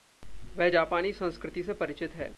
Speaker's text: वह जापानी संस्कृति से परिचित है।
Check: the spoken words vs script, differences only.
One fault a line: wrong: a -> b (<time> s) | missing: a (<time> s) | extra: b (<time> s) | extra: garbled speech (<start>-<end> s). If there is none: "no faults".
no faults